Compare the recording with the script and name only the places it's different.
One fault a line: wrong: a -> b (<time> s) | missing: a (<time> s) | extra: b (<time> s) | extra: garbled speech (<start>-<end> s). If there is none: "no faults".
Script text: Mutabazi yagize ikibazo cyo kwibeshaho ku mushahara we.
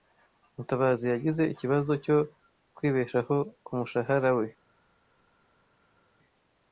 no faults